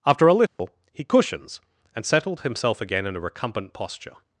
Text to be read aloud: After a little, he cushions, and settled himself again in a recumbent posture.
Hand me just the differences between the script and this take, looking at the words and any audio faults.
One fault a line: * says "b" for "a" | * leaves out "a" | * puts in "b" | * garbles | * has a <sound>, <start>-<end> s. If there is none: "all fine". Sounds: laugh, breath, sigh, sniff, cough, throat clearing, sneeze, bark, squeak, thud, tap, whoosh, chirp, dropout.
* has a dropout, 0.5-0.6 s